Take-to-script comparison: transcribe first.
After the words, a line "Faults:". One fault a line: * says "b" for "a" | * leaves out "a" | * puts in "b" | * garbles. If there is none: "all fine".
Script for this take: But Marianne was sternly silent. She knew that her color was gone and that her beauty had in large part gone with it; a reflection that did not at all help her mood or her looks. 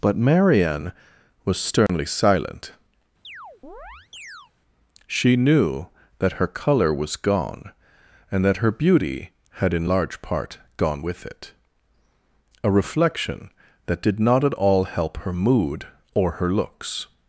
But Marianne was sternly silent. She knew that her color was gone and that her beauty had in large part gone with it; a reflection that did not at all help her mood or her looks.
Faults:
all fine